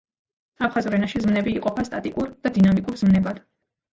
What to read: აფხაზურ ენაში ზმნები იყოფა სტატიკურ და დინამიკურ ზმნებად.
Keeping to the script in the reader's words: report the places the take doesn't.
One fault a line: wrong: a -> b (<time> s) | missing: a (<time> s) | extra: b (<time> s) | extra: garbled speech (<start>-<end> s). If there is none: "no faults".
no faults